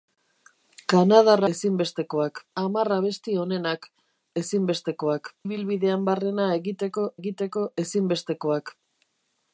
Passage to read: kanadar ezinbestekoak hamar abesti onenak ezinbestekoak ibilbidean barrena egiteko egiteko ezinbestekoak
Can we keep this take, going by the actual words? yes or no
yes